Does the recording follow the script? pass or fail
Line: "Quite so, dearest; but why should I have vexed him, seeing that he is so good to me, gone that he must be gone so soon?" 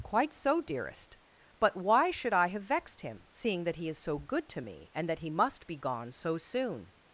fail